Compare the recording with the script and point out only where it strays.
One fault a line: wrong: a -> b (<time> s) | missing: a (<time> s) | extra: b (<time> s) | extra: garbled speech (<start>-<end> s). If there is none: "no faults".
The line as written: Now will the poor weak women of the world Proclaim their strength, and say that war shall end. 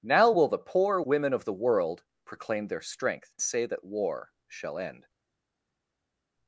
missing: weak (1.0 s)
missing: and (3.3 s)